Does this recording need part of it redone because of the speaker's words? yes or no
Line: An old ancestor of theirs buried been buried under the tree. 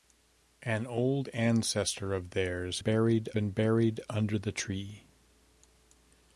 no